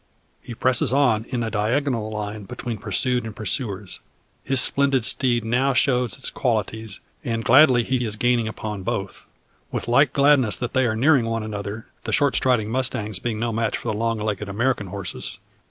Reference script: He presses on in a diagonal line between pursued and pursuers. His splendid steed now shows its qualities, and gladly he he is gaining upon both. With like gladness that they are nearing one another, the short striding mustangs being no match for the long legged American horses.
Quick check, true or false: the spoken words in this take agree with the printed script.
true